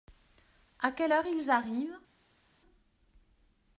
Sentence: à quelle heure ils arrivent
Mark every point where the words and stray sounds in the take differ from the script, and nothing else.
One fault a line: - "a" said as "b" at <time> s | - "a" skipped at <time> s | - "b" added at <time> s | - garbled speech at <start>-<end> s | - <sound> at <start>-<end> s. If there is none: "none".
none